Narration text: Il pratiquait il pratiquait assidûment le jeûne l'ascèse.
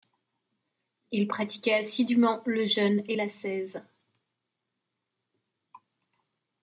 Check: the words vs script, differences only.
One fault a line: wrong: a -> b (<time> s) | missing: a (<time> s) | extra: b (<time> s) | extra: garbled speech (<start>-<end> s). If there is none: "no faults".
missing: il pratiquait (1.8 s)
extra: et (3.1 s)